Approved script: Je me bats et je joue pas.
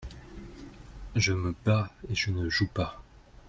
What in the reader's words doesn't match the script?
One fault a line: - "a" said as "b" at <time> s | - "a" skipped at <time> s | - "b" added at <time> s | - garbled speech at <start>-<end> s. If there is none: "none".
- "ne" added at 2.3 s